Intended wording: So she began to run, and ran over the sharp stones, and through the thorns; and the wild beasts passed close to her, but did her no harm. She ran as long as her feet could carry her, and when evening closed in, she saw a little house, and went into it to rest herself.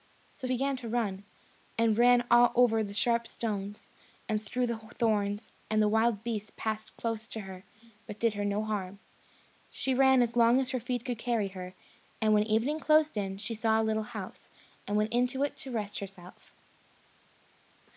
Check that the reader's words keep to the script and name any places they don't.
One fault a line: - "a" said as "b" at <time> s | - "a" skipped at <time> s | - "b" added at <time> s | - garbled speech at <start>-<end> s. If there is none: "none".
- "she" skipped at 0.5 s